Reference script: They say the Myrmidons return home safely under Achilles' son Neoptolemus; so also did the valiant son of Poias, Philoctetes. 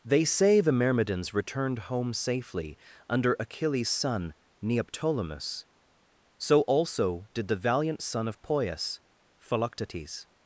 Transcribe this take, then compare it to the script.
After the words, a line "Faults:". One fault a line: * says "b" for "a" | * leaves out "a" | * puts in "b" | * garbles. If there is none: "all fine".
They say the Myrmidons returned home safely under Achilles' son Neoptolemus; so also did the valiant son of Poias, Philoctetes.
Faults:
* says "returned" for "return"